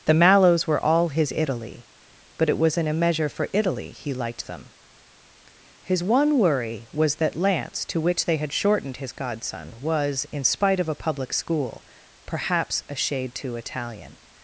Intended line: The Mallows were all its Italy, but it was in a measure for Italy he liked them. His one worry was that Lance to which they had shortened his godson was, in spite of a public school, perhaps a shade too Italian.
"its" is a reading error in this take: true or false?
true